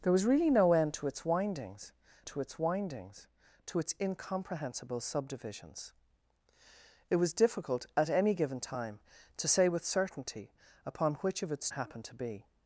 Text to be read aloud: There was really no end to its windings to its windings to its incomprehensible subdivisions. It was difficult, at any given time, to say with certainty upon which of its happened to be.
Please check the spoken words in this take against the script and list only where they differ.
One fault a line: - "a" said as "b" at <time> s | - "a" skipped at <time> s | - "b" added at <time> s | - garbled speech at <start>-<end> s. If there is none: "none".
none